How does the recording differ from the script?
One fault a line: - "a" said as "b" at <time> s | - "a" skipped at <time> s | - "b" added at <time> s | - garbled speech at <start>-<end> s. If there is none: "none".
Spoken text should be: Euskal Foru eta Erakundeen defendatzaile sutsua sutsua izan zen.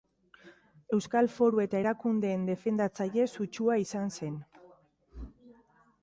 - "sutsua" skipped at 3.8 s